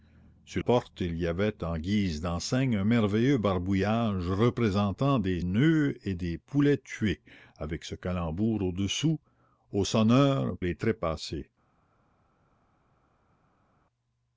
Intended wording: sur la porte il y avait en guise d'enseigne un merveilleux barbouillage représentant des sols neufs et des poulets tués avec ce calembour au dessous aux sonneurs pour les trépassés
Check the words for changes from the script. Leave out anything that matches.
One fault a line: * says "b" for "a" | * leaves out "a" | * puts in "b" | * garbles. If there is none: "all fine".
* leaves out "la"
* leaves out "sols"
* leaves out "pour"